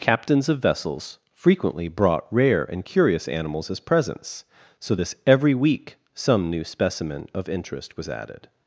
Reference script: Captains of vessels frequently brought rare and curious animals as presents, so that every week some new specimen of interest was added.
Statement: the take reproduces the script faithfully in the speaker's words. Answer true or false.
false